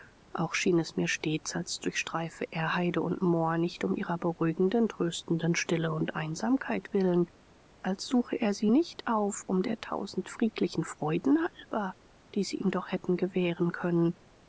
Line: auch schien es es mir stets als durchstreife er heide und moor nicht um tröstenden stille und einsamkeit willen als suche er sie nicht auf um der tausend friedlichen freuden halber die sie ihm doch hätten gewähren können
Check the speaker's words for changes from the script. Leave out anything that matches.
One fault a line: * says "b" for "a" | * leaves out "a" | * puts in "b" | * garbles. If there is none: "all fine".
* leaves out "es"
* puts in "ihrer beruhigenden"